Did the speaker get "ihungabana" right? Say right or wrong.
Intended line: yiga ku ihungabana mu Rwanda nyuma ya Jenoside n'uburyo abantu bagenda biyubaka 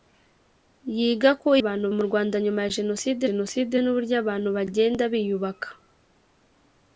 wrong